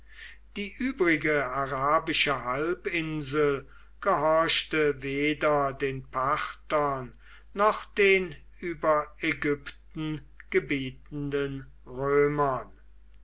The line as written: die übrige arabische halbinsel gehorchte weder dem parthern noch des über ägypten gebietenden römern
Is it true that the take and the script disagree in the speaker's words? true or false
true